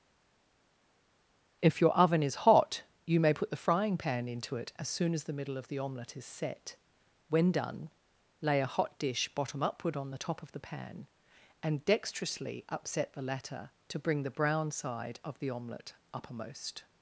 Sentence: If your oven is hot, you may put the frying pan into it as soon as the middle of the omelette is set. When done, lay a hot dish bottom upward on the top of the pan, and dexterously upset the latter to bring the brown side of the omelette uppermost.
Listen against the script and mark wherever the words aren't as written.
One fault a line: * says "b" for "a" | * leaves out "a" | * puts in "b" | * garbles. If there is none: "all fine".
all fine